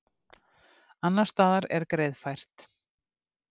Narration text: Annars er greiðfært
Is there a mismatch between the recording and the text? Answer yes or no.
yes